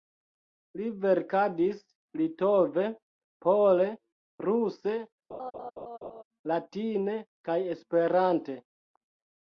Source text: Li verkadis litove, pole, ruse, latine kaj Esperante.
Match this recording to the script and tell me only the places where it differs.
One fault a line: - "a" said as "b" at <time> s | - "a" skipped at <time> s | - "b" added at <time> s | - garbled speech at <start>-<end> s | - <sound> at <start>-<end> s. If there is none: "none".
- laugh at 5.3-6.2 s